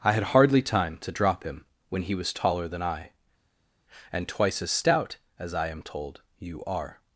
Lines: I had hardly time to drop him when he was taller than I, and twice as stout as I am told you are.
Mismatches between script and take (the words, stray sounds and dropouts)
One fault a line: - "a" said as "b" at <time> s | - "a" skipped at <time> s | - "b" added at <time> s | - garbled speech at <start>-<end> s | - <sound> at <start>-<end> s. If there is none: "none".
none